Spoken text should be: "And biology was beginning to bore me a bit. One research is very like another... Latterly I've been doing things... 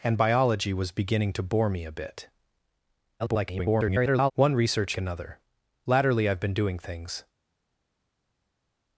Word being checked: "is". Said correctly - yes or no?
no